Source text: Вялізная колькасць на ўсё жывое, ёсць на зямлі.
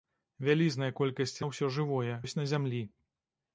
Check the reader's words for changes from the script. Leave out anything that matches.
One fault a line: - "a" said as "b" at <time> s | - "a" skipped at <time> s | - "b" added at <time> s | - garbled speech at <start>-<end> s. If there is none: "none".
none